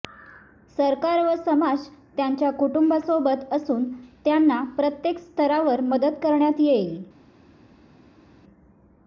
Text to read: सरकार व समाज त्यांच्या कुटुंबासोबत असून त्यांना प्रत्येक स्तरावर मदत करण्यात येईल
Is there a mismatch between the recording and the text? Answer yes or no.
no